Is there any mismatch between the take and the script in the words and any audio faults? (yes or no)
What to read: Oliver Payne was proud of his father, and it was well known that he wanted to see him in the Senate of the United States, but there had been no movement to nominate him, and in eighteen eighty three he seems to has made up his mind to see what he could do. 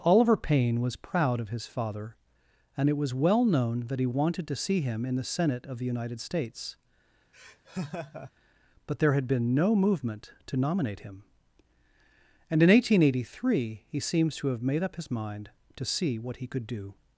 yes